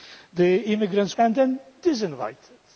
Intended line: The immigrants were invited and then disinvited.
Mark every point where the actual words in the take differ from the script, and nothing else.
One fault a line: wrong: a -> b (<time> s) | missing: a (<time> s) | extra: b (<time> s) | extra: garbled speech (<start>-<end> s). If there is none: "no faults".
missing: were invited (1.1 s)